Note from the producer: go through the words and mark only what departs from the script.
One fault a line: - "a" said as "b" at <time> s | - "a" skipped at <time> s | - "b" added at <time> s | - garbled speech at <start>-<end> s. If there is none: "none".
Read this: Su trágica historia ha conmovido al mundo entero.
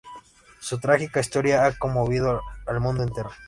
none